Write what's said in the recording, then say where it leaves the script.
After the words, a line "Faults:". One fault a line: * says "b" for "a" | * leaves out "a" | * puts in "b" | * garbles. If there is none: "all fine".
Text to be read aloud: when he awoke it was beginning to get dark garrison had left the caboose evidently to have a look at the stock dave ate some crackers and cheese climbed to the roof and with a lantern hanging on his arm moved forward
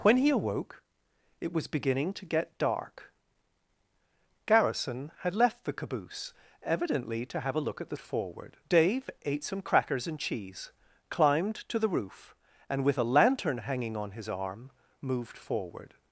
when he awoke it was beginning to get dark garrison had left the caboose evidently to have a look at the forward dave ate some crackers and cheese climbed to the roof and with a lantern hanging on his arm moved forward
Faults:
* says "forward" for "stock"